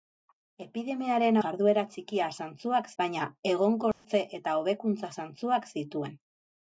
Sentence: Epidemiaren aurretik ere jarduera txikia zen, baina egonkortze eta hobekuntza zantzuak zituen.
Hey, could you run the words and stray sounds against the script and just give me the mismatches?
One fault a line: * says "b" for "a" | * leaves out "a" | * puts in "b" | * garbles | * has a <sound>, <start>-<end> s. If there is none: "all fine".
* leaves out "aurretik ere"
* says "zantzuak" for "zen"
* has a dropout, 3.9-4.0 s